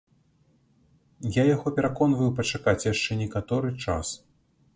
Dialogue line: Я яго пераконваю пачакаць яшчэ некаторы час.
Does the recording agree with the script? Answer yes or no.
yes